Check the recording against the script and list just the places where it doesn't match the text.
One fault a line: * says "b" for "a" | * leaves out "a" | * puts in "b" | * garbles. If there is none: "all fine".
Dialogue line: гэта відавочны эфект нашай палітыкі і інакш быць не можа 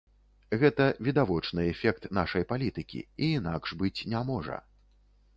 all fine